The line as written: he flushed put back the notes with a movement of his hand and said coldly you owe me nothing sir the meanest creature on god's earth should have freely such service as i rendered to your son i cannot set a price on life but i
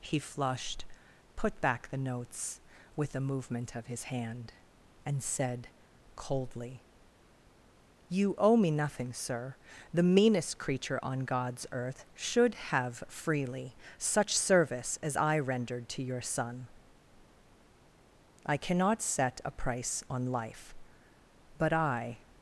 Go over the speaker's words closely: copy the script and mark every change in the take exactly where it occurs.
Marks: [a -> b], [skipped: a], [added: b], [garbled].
he flushed put back the notes with a movement of his hand and said coldly you owe me nothing sir the meanest creature on god's earth should have freely such service as i rendered to your son i cannot set a price on life but i